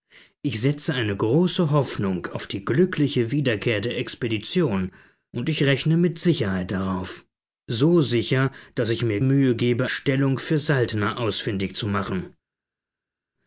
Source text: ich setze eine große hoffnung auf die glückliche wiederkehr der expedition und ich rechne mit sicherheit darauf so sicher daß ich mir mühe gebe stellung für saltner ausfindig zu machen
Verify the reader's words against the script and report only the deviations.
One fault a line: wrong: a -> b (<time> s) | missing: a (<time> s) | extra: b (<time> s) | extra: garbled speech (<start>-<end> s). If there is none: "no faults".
no faults